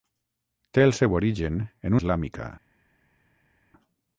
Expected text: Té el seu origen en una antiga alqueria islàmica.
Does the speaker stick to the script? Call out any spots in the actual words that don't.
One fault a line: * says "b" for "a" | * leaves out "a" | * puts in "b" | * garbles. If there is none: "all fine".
* leaves out "una antiga alqueria"